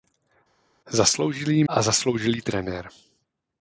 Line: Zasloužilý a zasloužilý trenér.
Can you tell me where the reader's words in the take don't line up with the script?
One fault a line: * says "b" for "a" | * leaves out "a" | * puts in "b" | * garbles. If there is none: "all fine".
all fine